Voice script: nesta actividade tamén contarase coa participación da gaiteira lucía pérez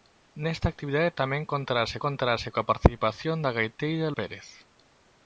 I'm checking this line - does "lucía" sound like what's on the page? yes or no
no